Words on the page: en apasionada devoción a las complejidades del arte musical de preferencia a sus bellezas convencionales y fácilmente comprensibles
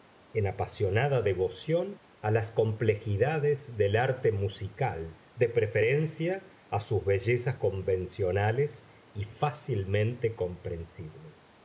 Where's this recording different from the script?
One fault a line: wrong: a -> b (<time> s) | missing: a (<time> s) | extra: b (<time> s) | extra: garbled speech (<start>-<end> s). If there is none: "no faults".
no faults